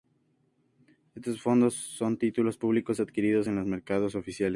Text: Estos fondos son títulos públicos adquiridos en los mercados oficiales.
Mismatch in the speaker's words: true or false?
false